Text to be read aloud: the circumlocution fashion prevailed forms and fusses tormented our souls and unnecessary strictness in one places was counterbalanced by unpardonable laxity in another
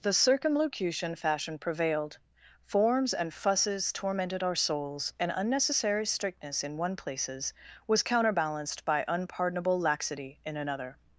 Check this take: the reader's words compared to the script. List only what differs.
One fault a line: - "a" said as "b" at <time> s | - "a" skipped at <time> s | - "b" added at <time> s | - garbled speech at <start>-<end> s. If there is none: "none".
none